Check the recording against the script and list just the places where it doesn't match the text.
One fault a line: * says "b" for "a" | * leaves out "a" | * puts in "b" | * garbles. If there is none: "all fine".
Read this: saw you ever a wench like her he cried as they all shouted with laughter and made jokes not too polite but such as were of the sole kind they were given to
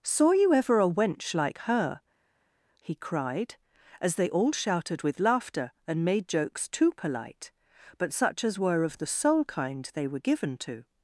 * leaves out "not"